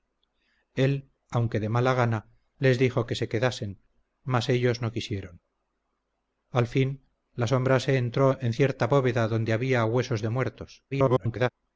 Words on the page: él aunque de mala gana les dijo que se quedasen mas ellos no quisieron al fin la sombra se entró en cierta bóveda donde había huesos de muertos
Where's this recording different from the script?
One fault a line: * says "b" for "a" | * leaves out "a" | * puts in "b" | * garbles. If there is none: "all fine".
* garbles